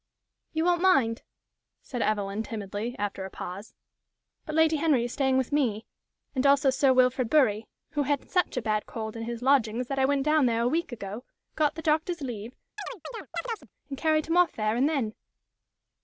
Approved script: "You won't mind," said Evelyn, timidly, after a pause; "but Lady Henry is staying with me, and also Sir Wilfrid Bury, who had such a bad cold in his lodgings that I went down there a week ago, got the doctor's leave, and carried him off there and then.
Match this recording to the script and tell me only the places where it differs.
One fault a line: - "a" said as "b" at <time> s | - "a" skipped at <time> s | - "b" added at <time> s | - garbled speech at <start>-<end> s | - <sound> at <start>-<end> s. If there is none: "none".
- chirp at 12.8-13.7 s